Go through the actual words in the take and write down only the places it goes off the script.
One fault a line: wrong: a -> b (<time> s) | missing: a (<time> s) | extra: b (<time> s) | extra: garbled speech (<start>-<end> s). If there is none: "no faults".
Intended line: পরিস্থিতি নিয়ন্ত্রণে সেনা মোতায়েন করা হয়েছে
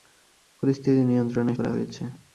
missing: সেনা মোতায়েন (1.5 s)